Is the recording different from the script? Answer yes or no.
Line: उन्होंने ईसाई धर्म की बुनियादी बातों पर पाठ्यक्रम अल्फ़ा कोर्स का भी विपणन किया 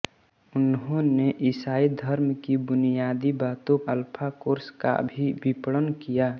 yes